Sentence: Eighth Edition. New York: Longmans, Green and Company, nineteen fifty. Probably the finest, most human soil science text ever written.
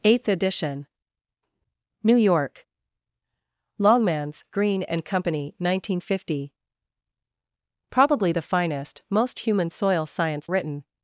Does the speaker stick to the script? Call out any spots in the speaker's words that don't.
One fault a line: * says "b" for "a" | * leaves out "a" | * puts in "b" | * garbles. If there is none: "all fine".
* leaves out "text ever"